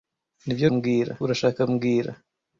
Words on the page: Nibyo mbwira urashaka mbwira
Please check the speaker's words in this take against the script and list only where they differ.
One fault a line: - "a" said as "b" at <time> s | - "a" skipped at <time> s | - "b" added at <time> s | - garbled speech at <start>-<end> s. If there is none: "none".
none